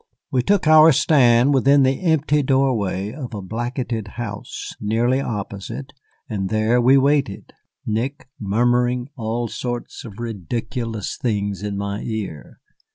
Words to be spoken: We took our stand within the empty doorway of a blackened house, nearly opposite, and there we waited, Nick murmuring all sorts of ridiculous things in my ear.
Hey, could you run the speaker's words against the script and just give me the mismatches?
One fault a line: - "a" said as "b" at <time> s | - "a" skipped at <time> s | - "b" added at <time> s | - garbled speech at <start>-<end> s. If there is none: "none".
none